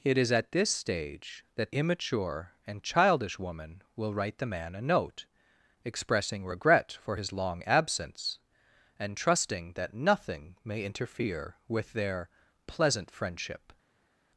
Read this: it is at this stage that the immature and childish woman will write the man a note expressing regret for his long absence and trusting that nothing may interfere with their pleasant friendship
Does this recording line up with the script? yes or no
no